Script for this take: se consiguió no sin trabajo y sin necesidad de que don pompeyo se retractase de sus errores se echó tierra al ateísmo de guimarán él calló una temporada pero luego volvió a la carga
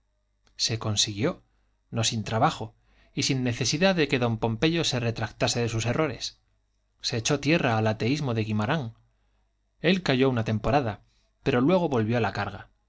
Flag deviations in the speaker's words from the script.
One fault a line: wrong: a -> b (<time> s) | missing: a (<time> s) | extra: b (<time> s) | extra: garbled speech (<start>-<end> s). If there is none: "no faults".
no faults